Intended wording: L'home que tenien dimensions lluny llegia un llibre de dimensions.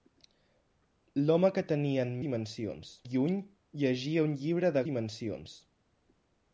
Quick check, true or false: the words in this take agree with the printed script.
true